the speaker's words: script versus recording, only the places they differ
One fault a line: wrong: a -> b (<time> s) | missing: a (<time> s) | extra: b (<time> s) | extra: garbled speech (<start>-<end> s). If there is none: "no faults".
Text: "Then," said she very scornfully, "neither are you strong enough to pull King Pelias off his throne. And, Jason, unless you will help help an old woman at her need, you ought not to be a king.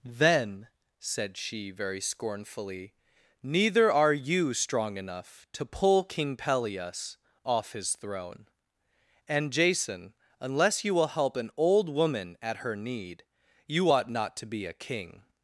missing: help (11.4 s)